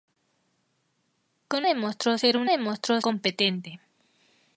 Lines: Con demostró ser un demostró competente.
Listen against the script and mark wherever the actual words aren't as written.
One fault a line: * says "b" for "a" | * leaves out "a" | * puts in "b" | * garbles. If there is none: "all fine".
all fine